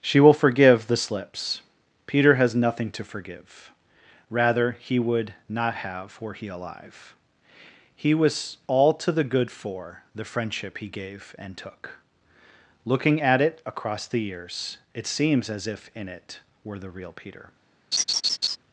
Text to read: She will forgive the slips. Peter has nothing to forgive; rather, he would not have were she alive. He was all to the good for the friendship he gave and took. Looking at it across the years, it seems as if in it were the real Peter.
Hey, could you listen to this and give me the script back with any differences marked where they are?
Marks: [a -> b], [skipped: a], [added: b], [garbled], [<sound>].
She will forgive the slips. Peter has nothing to forgive; rather, he would not have were [she -> he] alive. He was all to the good for the friendship he gave and took. Looking at it across the years, it seems as if in it were the real Peter. [laugh]